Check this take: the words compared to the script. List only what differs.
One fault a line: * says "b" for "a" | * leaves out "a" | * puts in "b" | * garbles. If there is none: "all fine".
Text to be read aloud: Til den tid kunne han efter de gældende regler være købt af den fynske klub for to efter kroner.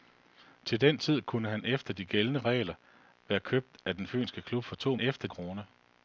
all fine